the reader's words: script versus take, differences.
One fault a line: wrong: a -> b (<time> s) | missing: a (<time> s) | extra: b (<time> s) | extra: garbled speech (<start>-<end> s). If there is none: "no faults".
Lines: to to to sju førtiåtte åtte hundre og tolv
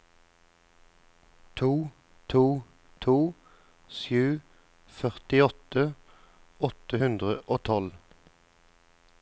no faults